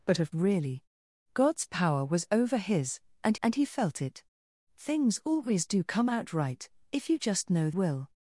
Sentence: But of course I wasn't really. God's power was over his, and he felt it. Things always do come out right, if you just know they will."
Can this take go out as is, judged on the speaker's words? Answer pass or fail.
fail